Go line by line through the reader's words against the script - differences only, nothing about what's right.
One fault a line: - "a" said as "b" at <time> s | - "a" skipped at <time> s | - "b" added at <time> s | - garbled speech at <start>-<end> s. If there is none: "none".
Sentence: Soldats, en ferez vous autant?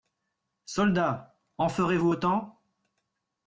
none